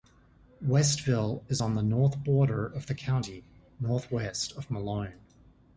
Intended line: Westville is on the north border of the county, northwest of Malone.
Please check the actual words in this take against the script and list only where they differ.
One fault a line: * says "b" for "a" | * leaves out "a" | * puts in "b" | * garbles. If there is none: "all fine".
all fine